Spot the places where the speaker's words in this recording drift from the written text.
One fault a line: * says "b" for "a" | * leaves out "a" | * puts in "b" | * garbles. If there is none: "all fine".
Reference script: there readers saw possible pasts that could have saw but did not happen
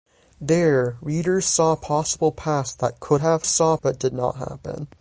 all fine